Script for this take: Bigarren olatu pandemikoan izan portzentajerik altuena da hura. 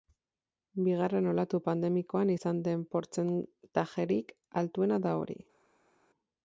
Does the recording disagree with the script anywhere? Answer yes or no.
yes